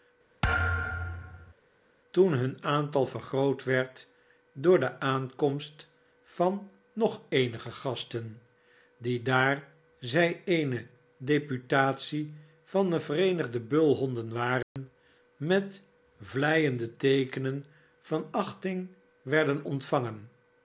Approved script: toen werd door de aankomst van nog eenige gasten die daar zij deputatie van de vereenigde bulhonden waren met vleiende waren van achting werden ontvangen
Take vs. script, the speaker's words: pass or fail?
fail